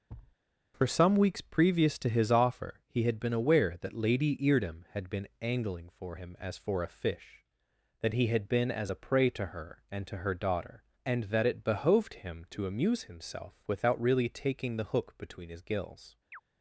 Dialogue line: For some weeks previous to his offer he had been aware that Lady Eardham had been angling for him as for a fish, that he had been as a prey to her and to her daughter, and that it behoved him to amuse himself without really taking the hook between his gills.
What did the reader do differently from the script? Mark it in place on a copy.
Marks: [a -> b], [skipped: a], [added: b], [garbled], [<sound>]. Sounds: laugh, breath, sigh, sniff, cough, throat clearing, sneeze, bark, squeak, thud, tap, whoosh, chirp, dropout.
[thud] For some weeks previous to his offer he had been aware that Lady Eardham had been angling for him as for a fish, that he had been as a prey to her and to her daughter, and that it behoved him to amuse himself without really taking the hook between his gills. [chirp]